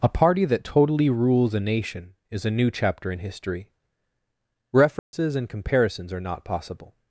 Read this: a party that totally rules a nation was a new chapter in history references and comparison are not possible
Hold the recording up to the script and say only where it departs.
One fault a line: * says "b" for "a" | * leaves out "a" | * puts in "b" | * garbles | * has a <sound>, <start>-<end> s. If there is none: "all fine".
* says "is" for "was"
* has a dropout, 5.0-5.1 s
* says "comparisons" for "comparison"